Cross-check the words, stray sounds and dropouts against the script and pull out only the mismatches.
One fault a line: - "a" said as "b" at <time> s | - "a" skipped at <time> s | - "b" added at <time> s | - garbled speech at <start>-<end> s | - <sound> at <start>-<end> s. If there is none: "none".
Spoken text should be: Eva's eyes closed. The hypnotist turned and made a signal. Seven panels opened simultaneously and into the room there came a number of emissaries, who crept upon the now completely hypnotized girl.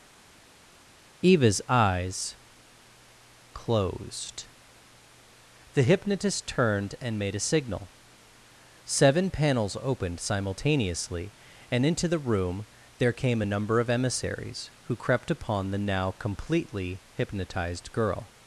none